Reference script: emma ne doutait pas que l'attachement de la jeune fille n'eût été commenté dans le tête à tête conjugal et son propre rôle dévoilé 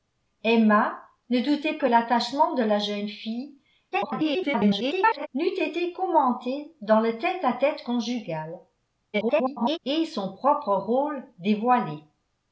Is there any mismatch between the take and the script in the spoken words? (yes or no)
yes